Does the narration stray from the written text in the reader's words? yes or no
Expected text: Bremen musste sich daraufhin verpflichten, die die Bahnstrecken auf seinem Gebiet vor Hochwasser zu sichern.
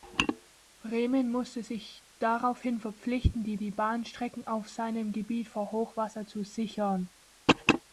no